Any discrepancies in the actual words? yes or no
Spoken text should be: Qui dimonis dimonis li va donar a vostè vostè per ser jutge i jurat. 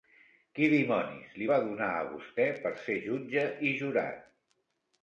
yes